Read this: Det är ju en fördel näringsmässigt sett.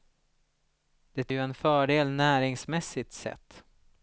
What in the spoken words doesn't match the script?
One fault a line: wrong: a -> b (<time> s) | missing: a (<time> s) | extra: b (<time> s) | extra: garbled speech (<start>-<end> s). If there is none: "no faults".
missing: är (1.3 s)